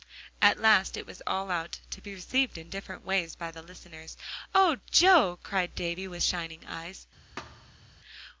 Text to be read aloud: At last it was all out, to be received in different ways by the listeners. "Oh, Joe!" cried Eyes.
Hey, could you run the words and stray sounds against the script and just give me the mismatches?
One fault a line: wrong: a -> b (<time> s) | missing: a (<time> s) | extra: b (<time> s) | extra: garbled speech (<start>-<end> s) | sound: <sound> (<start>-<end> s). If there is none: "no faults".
extra: Davie with shining (5.8 s)
sound: thud (7.4-7.9 s)